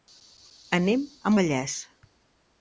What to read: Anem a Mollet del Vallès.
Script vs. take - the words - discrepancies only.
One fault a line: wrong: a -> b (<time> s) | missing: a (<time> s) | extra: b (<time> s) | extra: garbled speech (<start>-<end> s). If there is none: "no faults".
missing: Mollet del (1.3 s)